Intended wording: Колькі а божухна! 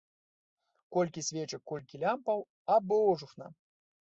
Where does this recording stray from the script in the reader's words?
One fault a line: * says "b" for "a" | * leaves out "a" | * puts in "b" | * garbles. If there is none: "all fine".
* puts in "свечак колькі лямпаў"